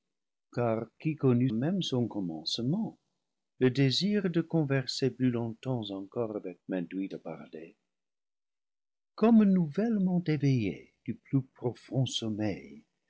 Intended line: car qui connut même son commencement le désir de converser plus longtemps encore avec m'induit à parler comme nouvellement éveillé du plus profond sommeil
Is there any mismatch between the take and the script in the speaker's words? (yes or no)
no